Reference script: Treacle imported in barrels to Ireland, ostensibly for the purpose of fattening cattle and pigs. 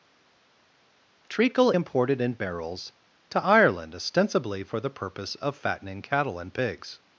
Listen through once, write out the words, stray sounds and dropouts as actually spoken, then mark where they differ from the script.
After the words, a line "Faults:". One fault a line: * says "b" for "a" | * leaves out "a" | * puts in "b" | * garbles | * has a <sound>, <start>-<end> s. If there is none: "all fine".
Treacle imported in barrels to Ireland, ostensibly for the purpose of fattening cattle and pigs.
Faults:
all fine